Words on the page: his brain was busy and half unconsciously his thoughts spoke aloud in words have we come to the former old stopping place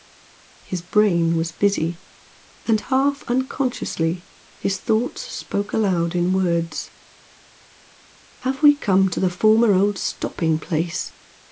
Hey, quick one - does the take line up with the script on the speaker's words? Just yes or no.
yes